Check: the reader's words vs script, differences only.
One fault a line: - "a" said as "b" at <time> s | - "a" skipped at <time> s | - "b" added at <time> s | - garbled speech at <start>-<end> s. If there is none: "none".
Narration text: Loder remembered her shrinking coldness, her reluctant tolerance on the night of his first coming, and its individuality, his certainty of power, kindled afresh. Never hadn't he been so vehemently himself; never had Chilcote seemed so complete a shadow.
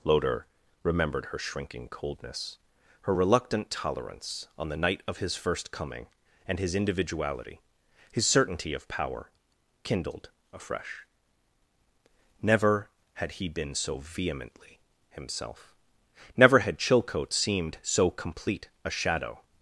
- "its" said as "his" at 6.6 s
- "hadn't" said as "had" at 13.1 s